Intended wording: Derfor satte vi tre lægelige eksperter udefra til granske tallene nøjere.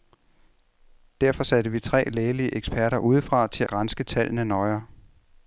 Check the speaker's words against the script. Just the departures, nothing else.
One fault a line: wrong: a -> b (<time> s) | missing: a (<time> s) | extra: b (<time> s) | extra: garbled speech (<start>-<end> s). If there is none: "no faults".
no faults